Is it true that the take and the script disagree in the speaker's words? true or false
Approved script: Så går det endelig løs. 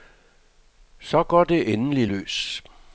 false